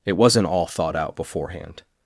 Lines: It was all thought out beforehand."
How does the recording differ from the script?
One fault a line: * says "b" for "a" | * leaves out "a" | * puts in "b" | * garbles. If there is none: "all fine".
* says "wasn't" for "was"